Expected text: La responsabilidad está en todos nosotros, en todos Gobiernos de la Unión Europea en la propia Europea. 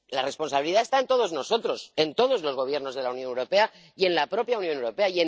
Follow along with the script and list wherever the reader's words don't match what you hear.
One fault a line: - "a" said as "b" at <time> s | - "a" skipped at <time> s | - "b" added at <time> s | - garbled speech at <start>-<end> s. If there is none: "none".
- "los" added at 2.4 s
- "y" added at 3.9 s
- "Unión" added at 4.6 s